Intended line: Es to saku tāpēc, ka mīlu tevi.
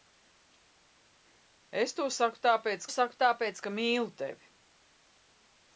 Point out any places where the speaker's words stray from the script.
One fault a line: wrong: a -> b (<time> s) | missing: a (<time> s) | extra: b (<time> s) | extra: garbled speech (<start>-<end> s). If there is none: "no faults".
extra: saku tāpēc (2.9 s)